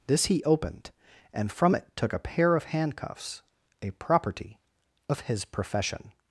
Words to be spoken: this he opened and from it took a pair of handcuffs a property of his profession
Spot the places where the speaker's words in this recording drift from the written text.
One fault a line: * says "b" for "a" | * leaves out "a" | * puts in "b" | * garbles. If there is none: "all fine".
all fine